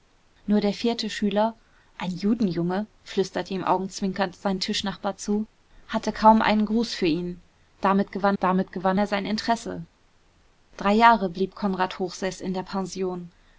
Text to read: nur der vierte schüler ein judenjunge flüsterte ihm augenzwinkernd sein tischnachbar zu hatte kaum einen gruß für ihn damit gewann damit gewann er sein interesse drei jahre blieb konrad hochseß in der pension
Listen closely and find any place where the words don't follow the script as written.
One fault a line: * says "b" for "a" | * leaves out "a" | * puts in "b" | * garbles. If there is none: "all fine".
all fine